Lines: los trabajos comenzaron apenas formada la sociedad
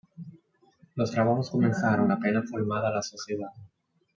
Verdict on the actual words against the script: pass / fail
pass